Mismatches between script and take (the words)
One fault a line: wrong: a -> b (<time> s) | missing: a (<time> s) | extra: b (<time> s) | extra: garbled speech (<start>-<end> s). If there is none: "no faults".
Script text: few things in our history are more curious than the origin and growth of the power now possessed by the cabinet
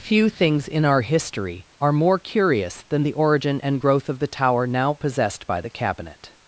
wrong: power -> tower (4.3 s)